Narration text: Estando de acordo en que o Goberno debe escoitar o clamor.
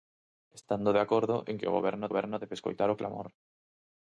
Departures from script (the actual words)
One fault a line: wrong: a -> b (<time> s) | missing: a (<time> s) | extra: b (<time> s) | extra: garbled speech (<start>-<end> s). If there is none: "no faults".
extra: Goberno (2.1 s)